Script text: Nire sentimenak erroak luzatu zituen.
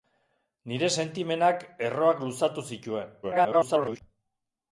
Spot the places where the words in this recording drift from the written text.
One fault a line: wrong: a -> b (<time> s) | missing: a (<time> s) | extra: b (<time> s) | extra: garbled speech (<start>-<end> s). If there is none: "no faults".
extra: garbled speech (3.2-4.0 s)